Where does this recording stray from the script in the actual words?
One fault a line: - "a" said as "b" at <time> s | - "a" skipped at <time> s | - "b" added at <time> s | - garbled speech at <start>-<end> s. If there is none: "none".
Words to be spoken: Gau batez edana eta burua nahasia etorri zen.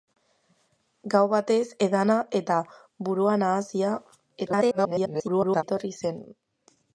- garbled speech at 4.5-5.6 s